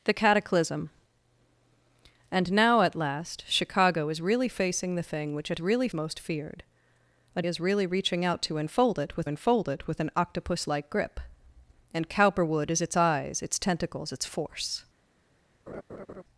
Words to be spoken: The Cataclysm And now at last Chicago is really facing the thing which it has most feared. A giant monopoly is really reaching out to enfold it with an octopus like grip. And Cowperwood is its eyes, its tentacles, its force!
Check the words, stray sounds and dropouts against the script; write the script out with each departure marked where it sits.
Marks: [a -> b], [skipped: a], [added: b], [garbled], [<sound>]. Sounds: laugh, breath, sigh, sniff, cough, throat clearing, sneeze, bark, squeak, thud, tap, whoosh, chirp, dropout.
The Cataclysm And now at last Chicago is really facing the thing which it [has -> really] most feared. A [skipped: giant monopoly] is really reaching out to enfold it with [added: enfold it with] an octopus like grip. And Cowperwood is its eyes, its tentacles, its force! [laugh]